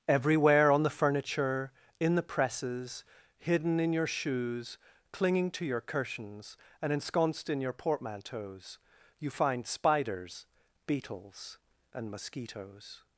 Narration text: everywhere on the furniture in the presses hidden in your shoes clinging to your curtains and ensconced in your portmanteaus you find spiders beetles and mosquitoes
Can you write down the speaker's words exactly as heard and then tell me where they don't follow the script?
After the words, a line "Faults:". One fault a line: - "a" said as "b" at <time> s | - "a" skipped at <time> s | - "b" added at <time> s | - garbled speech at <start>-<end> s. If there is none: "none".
everywhere on the furniture in the presses hidden in your shoes clinging to your cushions and ensconced in your portmanteaus you find spiders beetles and mosquitoes
Faults:
- "curtains" said as "cushions" at 5.8 s